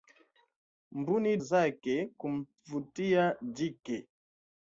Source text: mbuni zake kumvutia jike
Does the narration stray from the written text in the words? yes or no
no